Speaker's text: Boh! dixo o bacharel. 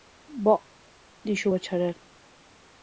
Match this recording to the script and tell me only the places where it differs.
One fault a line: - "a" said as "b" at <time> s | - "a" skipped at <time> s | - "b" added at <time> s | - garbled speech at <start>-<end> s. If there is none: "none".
none